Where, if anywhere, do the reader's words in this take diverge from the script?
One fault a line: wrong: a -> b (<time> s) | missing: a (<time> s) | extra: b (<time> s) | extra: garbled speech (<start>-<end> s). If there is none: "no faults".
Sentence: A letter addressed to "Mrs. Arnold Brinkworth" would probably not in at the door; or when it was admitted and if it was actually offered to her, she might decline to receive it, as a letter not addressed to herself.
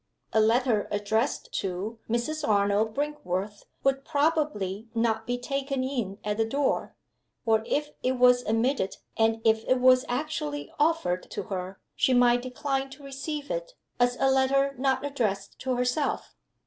extra: be taken (5.3 s)
wrong: when -> if (7.7 s)